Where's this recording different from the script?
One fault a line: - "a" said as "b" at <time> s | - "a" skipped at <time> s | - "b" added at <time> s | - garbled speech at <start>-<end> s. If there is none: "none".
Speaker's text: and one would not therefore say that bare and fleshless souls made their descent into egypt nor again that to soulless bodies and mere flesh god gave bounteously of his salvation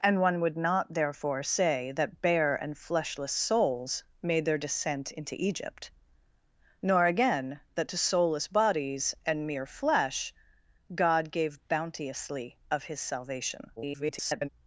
- garbled speech at 13.8-14.5 s